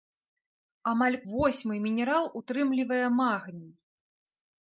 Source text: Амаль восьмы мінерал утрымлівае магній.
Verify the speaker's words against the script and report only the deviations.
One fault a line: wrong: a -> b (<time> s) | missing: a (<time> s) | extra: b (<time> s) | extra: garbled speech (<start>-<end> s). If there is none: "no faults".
no faults